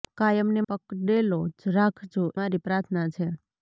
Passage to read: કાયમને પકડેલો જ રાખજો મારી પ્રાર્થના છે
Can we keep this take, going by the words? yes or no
yes